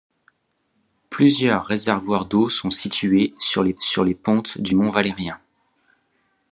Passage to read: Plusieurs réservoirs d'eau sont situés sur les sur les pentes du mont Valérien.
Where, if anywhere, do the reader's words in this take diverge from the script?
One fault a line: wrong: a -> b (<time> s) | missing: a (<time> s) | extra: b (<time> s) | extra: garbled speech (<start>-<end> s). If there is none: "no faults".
no faults